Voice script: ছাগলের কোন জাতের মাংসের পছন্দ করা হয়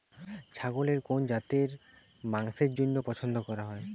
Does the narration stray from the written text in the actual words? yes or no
yes